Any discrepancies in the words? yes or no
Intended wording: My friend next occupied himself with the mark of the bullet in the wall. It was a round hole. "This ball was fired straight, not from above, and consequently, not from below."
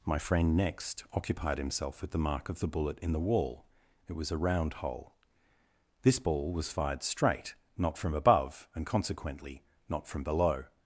no